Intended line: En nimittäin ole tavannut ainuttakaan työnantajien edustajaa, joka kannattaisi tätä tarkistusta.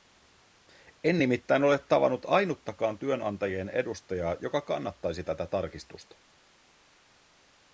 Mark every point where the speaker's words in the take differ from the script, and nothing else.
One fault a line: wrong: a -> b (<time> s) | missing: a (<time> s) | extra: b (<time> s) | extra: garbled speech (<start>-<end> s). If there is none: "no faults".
no faults